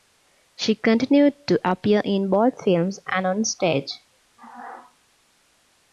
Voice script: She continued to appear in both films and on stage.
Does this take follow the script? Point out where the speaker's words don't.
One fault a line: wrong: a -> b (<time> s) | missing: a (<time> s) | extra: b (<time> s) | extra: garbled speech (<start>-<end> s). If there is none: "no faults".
no faults